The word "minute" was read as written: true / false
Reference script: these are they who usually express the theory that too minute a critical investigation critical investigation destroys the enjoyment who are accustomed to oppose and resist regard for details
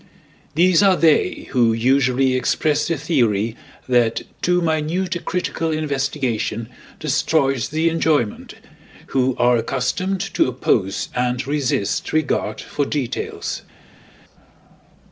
true